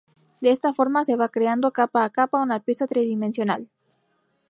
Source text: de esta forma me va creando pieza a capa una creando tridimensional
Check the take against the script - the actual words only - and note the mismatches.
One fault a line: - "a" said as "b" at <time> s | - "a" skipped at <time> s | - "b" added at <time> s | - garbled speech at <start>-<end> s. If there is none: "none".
- "me" said as "se" at 1.0 s
- "pieza" said as "capa" at 1.7 s
- "creando" said as "pieza" at 2.6 s